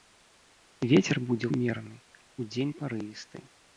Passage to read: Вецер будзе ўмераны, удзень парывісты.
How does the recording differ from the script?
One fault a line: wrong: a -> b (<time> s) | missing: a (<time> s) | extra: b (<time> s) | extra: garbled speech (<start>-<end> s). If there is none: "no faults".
no faults